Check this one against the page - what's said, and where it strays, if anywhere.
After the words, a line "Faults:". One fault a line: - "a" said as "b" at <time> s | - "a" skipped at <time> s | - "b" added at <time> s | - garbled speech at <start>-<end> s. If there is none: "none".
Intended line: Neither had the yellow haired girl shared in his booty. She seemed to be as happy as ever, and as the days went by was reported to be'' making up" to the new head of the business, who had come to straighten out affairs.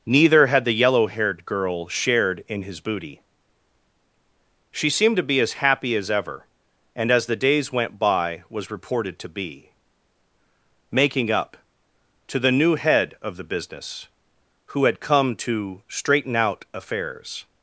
Neither had the yellow haired girl shared in his booty. She seemed to be as happy as ever, and as the days went by was reported to be'' making up" to the new head of the business, who had come to straighten out affairs.
Faults:
none